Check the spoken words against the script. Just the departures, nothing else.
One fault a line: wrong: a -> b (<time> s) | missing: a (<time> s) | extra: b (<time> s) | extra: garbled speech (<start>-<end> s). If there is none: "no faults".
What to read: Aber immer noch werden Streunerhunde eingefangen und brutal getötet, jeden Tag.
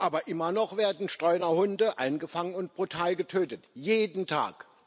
no faults